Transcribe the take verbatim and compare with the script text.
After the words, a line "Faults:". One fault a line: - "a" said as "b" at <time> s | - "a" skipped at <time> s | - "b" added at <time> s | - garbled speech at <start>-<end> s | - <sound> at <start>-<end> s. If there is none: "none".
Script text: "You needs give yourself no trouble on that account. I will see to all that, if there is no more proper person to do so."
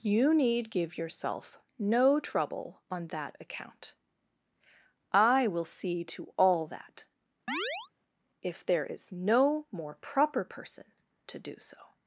"You need give yourself no trouble on that account. I will see to all that, if there is no more proper person to do so."
Faults:
- "needs" said as "need" at 0.3 s
- chirp at 7.5-7.9 s